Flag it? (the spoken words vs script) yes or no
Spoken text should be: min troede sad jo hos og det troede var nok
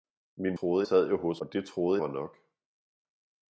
no